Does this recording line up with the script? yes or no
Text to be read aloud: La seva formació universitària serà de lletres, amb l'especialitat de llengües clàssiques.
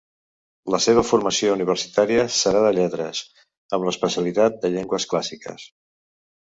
yes